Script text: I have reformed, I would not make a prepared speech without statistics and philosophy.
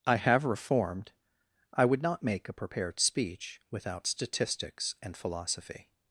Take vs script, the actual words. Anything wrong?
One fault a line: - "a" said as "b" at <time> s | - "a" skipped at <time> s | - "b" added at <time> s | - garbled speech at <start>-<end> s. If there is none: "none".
none